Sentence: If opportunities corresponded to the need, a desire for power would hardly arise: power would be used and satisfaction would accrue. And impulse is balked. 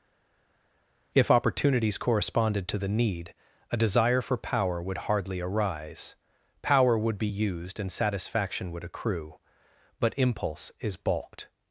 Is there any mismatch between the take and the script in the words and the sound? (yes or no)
yes